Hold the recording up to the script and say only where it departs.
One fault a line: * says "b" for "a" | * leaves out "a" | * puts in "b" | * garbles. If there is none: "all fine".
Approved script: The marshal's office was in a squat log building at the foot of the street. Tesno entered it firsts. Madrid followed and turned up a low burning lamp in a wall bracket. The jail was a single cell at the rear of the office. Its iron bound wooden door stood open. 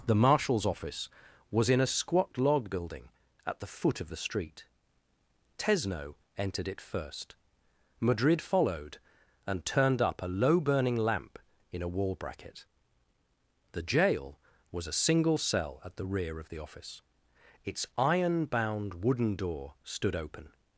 * says "first" for "firsts"